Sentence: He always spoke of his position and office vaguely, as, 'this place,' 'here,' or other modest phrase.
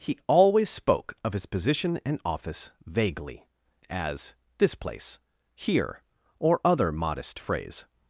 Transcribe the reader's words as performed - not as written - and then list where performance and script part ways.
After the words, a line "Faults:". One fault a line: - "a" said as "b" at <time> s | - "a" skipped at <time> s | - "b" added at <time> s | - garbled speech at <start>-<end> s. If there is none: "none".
He always spoke of his position and office vaguely, as, 'this place,' 'here,' or other modest phrase.
Faults:
none